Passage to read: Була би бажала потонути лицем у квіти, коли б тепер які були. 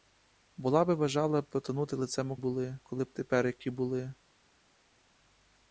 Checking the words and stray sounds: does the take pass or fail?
fail